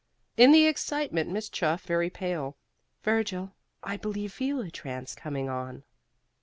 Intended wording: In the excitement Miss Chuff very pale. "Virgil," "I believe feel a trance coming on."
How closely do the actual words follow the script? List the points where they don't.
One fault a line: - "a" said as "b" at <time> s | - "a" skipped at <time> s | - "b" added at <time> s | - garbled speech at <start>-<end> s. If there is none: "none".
none